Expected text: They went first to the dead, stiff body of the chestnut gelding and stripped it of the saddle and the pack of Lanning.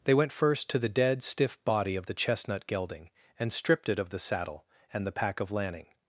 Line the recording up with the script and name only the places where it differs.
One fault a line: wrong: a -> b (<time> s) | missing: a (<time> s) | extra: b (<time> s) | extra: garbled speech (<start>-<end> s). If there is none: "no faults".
no faults